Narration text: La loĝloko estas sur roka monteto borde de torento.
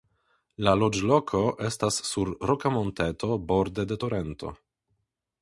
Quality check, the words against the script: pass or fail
pass